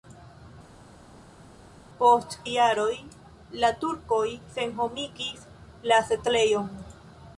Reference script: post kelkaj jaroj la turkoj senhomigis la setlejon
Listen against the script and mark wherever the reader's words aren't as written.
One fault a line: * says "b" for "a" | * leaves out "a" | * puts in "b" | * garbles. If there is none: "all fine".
* leaves out "kelkaj"